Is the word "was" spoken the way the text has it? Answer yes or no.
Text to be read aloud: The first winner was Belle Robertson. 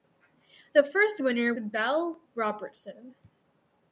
no